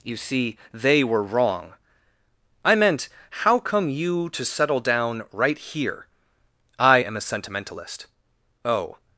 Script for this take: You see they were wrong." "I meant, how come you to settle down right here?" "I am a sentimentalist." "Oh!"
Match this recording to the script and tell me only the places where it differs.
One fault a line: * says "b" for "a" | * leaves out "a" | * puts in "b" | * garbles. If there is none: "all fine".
all fine